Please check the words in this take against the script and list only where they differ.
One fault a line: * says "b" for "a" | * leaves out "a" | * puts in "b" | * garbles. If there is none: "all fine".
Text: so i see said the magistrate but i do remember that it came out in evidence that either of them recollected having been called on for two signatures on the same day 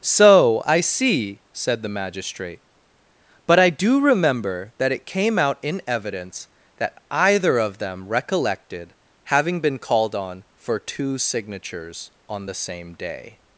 all fine